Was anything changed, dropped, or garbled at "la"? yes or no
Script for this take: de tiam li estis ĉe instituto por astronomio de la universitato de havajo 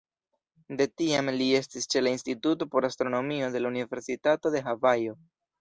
no